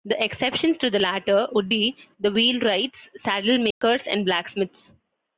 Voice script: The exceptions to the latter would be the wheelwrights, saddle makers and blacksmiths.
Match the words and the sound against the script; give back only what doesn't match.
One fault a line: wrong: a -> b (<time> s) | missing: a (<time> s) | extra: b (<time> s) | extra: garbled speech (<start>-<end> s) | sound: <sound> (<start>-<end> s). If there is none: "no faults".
sound: dropout (3.7-3.8 s)